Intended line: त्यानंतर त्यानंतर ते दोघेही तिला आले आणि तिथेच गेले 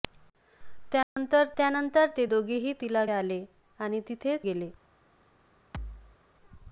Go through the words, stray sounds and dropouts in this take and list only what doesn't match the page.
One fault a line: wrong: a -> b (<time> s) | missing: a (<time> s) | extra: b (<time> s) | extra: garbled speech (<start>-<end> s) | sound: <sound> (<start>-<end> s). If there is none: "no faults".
sound: dropout (1.0-1.2 s)
sound: thud (5.7-6.2 s)